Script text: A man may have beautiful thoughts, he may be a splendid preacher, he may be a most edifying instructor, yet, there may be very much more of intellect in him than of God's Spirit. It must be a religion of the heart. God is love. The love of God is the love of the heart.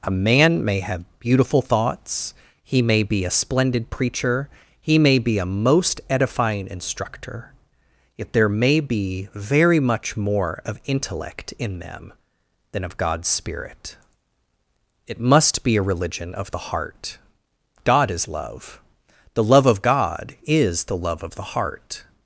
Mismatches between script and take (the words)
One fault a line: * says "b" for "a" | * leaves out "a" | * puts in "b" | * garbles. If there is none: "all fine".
* says "them" for "him"